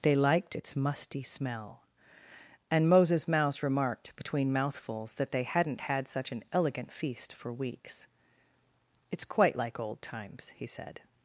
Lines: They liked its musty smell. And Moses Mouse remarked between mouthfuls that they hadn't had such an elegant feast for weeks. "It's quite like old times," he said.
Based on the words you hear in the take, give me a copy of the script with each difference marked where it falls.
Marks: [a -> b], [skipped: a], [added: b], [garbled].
They liked its musty smell. And Moses Mouse remarked between mouthfuls that they hadn't had such an elegant feast for weeks. "It's quite like old times," he said.